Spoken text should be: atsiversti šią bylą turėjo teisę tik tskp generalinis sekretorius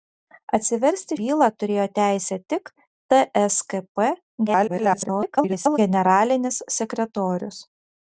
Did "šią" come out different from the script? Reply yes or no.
yes